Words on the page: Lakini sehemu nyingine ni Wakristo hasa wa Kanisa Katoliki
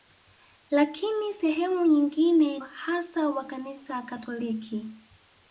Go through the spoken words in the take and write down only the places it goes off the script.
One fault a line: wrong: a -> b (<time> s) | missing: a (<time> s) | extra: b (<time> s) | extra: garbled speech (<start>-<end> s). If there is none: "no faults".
missing: ni Wakristo (2.6 s)